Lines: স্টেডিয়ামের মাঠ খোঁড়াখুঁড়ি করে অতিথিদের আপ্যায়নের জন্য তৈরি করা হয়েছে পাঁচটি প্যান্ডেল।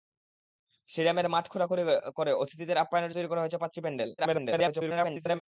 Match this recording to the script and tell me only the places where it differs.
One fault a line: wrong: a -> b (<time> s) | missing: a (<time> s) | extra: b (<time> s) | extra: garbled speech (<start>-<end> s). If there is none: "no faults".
missing: জন্য (3.1 s)
extra: garbled speech (4.2-5.4 s)